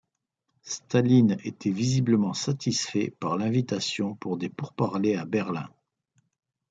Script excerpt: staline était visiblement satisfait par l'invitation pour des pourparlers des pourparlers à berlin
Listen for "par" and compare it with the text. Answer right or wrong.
right